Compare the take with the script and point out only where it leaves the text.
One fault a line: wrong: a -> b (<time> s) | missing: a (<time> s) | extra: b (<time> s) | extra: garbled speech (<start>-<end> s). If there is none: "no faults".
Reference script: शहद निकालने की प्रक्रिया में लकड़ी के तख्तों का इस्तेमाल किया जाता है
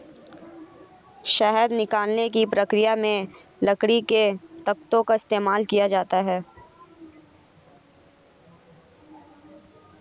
no faults